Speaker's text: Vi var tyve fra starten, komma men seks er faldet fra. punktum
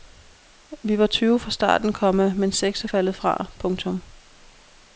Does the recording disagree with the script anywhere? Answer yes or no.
no